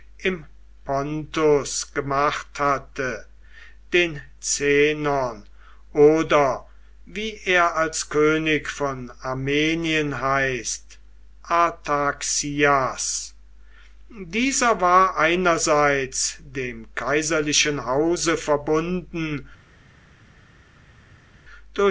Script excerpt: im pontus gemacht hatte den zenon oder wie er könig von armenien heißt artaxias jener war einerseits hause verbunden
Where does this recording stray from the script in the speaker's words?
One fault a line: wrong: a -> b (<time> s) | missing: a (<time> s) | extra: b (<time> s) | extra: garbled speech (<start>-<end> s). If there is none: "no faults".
extra: als (7.8 s)
wrong: jener -> dieser (14.1 s)
extra: dem kaiserlichen (16.4 s)